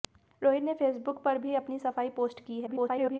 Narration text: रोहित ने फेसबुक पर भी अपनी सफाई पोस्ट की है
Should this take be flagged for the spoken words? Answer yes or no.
yes